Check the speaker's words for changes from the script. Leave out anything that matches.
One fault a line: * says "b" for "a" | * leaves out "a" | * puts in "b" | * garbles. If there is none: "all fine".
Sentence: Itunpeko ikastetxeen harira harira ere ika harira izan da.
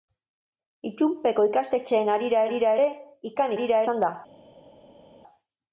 all fine